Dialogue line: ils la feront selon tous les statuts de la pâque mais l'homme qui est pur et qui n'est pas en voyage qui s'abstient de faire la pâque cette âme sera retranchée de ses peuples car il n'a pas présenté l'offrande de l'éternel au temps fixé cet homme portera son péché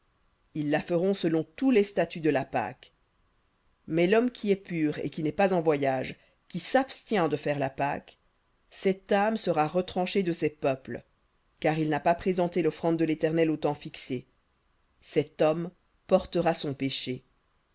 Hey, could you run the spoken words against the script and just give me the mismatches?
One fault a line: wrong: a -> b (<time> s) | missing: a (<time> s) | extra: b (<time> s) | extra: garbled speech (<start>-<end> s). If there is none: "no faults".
no faults